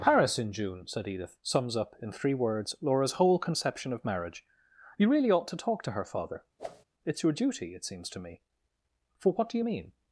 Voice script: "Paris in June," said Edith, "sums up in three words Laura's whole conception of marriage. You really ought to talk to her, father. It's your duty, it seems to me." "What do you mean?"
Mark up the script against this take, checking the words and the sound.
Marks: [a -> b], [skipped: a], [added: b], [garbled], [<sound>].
"Paris in June," said Edith, "sums up in three words Laura's whole conception of marriage. You really ought to talk to her, father. [whoosh] It's your duty, it seems to me." [added: for] "What do you mean?"